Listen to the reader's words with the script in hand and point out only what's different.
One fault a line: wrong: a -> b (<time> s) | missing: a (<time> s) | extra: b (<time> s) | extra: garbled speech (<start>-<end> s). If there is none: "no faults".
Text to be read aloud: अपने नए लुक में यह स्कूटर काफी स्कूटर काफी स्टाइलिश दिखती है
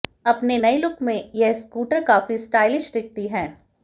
missing: स्कूटर काफी (2.4 s)